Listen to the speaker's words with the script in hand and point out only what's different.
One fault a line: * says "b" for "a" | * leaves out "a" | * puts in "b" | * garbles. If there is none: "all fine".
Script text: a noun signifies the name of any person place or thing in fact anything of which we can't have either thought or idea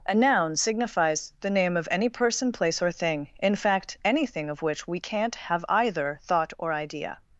all fine